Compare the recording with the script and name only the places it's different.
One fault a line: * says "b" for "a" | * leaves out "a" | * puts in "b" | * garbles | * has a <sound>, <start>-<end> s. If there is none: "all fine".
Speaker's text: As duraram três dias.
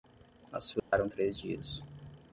* has a dropout, 0.8-0.9 s